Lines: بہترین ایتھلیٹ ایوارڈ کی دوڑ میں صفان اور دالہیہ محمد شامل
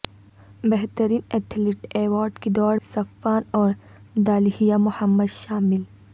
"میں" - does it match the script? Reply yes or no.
no